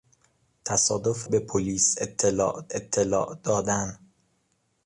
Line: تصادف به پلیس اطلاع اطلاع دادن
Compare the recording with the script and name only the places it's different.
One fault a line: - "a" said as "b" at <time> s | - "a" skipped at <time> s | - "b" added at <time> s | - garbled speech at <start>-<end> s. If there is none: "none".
none